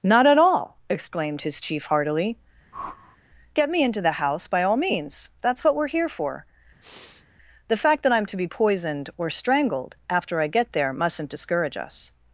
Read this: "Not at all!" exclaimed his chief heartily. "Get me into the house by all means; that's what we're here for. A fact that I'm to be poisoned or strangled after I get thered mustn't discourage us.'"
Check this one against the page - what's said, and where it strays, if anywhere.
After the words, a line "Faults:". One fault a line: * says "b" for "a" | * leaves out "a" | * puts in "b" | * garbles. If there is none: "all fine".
"Not at all!" exclaimed his chief heartily. "Get me into the house by all means; that's what we're here for. The fact that I'm to be poisoned or strangled after I get there mustn't discourage us.'"
Faults:
* says "The" for "A"
* says "there" for "thered"